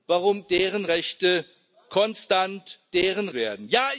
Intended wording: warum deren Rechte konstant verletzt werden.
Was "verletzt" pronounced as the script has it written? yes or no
no